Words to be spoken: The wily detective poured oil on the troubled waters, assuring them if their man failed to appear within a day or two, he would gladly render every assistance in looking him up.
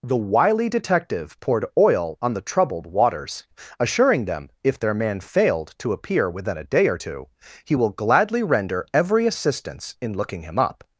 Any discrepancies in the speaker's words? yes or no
yes